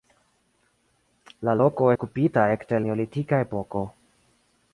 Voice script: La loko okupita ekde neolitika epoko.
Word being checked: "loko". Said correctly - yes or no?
yes